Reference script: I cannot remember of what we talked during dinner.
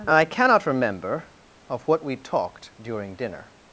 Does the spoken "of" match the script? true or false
true